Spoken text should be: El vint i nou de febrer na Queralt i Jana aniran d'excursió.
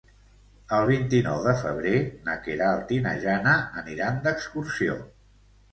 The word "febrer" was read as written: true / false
true